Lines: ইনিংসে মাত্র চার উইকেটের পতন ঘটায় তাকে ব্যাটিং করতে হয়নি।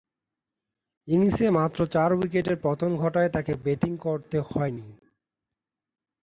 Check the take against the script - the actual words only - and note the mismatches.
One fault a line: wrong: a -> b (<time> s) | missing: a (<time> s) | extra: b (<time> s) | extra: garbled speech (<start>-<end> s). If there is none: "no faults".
no faults